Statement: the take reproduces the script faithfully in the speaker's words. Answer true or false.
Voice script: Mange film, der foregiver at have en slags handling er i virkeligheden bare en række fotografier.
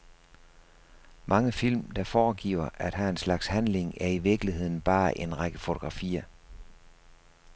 true